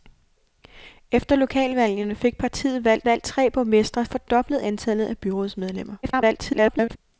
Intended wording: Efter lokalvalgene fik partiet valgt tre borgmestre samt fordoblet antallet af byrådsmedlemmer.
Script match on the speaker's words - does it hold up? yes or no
no